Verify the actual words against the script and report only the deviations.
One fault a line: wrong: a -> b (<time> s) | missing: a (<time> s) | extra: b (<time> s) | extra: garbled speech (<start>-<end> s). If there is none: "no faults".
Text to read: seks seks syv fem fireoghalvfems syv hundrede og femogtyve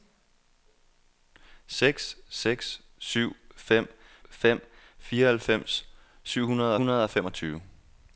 extra: fem (4.3 s)
extra: hundrede (6.8 s)